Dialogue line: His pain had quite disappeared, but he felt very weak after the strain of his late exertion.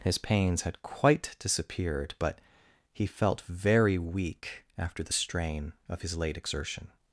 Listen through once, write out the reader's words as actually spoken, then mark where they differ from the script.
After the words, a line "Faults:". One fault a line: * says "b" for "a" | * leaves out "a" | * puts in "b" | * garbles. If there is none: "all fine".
His pains had quite disappeared, but he felt very weak after the strain of his late exertion.
Faults:
* says "pains" for "pain"